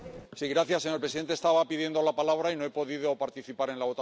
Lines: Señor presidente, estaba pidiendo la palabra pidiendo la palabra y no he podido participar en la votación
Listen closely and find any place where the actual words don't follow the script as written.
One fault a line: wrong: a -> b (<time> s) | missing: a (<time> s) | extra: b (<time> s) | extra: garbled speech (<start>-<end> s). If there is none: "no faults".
missing: pidiendo la palabra (2.5 s)